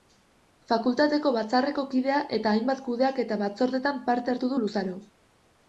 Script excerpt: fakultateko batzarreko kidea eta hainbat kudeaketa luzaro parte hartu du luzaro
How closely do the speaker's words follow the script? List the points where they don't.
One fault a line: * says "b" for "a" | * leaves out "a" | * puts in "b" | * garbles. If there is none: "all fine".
* says "batzordetan" for "luzaro"